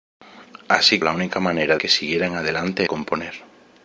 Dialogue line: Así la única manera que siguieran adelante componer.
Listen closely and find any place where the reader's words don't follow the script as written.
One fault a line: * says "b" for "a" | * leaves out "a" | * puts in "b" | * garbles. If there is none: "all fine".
all fine